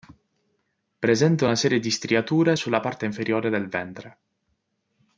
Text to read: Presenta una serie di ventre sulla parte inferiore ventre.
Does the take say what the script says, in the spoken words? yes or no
no